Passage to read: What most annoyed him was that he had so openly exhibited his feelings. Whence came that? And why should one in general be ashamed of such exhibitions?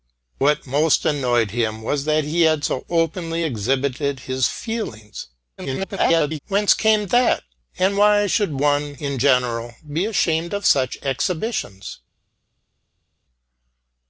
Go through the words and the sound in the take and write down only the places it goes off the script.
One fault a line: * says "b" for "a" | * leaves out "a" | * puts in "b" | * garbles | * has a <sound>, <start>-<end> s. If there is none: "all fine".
* garbles